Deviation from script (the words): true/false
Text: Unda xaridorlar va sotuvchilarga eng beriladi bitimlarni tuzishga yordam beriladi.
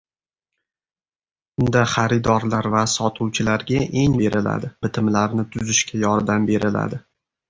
false